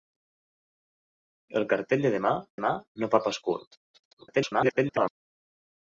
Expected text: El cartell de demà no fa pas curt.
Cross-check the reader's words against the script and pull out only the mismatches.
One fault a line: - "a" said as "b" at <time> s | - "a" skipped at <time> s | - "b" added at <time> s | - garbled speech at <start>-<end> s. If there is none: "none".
- "demà" added at 2.6 s
- garbled speech at 3.9-5.2 s